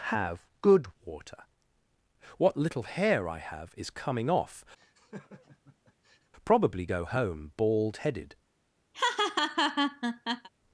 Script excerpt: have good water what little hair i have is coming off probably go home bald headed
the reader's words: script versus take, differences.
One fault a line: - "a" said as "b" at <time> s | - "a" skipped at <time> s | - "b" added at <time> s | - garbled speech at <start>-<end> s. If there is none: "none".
none